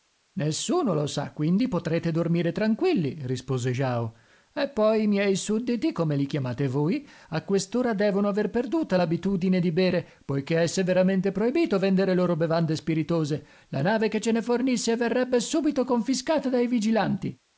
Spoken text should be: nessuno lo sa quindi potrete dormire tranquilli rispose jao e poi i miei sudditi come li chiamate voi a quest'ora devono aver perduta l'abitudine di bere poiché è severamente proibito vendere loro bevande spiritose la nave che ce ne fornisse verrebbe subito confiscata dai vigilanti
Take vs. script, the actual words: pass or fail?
pass